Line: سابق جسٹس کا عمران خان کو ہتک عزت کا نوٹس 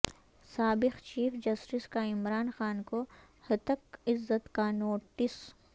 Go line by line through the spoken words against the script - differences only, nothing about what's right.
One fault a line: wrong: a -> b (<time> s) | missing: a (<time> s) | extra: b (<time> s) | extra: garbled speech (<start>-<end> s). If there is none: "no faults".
extra: چیف (1.0 s)